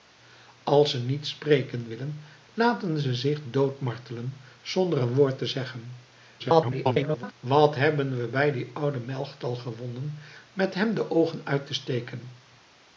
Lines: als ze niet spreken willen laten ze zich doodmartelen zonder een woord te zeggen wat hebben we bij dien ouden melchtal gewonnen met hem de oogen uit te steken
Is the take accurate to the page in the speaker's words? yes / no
no